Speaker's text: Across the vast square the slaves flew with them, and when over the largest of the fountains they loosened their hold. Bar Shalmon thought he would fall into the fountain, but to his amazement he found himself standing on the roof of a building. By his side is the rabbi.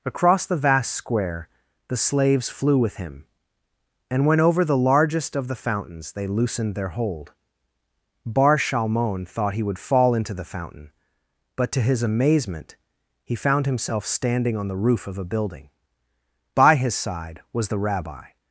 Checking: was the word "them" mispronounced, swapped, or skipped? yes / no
yes